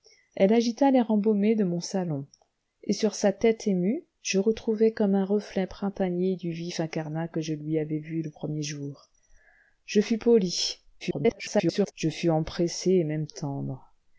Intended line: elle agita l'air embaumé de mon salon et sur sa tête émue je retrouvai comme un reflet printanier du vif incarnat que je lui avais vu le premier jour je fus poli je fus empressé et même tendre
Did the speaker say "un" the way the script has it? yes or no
yes